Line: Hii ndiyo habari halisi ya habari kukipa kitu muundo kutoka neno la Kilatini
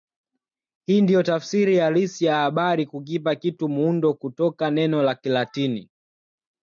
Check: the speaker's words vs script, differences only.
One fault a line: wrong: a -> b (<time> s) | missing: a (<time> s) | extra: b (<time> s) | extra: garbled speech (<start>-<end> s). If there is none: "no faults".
wrong: habari -> tafsiri (1.2 s)